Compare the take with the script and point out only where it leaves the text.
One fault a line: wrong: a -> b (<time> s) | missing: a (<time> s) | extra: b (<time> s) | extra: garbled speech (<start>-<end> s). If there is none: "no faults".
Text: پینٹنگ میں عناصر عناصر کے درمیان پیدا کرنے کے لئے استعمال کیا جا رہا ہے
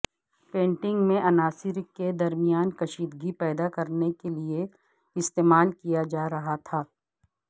missing: عناصر (1.8 s)
extra: کشیدگی (2.8 s)
wrong: ہے -> تھا (6.6 s)